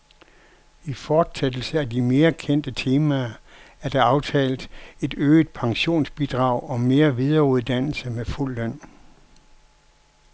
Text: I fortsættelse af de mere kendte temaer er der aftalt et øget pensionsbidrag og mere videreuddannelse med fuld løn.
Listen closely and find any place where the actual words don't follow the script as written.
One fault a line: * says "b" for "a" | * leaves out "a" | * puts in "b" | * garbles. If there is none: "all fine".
all fine